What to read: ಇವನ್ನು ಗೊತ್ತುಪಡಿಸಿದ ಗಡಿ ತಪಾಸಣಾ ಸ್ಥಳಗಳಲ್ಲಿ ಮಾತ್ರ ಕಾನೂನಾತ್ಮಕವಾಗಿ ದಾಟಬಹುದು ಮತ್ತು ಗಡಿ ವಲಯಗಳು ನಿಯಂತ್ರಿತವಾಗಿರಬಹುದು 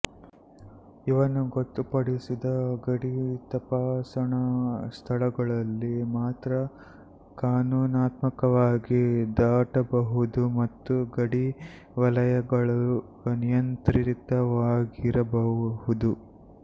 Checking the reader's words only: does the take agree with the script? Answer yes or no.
yes